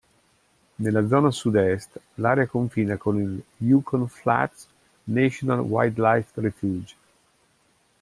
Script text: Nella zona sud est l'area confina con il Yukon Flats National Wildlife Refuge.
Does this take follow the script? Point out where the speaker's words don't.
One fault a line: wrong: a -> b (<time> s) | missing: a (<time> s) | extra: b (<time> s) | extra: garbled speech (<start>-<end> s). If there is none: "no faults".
no faults